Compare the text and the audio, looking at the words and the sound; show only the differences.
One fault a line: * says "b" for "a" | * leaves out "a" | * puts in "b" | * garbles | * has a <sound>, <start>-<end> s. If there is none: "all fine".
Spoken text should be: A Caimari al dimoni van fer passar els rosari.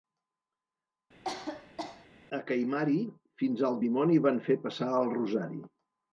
* has a cough, 1.2-2.1 s
* puts in "fins"
* says "el" for "els"